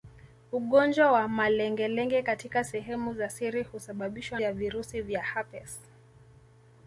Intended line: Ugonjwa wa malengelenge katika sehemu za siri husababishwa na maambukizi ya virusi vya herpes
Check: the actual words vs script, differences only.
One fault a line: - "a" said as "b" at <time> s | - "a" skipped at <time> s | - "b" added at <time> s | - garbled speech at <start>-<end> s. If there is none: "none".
- "na maambukizi" skipped at 4.4 s